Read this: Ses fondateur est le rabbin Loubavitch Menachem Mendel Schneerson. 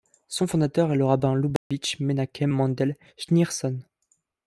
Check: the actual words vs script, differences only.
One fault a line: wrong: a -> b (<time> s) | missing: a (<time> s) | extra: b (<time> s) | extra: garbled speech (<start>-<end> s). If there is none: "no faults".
wrong: Ses -> Son (0.3 s)